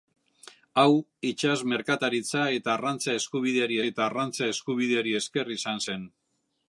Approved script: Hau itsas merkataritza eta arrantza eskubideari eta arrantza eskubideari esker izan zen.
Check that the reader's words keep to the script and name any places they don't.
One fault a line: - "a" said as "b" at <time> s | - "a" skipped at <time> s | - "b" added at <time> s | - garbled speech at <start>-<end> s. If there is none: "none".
none